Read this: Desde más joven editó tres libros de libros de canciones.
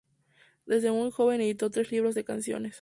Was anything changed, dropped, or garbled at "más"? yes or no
yes